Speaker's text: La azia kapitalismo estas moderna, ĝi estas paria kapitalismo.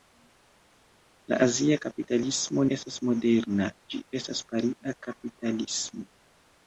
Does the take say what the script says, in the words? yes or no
yes